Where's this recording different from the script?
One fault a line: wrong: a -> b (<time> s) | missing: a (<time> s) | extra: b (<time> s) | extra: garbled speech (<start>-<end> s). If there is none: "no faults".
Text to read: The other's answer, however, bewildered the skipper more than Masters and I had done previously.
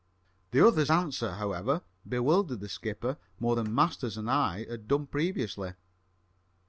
no faults